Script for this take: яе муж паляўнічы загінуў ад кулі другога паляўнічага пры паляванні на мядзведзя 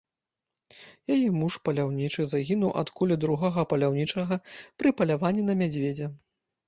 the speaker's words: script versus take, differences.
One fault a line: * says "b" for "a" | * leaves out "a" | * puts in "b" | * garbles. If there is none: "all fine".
all fine